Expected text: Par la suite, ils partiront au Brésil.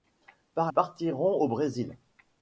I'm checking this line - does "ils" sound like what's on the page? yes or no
no